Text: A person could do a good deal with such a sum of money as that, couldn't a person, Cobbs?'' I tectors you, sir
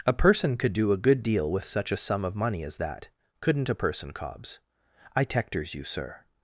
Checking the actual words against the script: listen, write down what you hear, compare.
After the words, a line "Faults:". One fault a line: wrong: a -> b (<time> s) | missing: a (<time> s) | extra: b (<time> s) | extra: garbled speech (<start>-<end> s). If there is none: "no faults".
A person could do a good deal with such a sum of money as that, couldn't a person, Cobbs?'' I tectors you, sir
Faults:
no faults